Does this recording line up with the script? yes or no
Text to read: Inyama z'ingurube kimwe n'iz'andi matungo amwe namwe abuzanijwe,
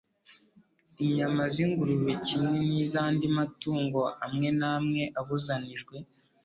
yes